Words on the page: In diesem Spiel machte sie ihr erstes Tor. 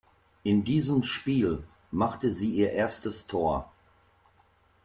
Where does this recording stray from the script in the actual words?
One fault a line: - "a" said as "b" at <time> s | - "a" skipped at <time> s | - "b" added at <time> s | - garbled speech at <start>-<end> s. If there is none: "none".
none